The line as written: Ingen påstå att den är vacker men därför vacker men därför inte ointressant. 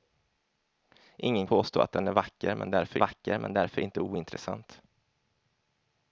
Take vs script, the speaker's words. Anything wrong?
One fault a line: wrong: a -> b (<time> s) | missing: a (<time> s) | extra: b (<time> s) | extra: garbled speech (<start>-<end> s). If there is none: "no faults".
no faults